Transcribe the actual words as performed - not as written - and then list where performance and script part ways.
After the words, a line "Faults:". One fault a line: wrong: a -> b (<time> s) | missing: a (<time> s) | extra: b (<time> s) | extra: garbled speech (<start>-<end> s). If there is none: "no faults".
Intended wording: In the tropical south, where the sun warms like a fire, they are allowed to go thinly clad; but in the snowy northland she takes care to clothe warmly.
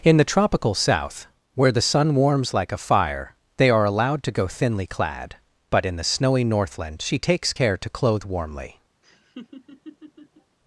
In the tropical south, where the sun warms like a fire, they are allowed to go thinly clad; but in the snowy northland she takes care to clothe warmly.
Faults:
no faults